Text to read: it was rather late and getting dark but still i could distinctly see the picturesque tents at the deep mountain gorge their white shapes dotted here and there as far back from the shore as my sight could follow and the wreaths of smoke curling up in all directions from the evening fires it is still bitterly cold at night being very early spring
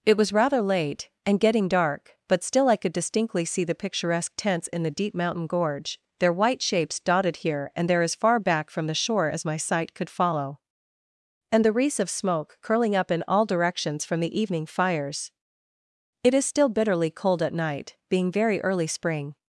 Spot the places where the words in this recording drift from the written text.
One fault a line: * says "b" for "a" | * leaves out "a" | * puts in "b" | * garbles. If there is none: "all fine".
* says "in" for "at"